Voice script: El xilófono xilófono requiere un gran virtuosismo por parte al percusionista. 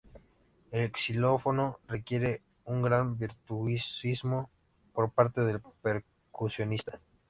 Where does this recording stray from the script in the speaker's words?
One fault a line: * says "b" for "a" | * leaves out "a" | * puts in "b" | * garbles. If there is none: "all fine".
* leaves out "xilófono"
* says "del" for "al"